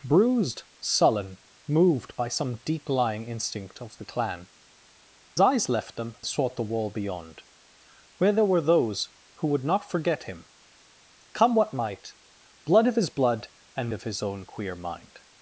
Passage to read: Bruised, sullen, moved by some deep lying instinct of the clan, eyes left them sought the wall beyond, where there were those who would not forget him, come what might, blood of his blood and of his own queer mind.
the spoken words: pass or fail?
pass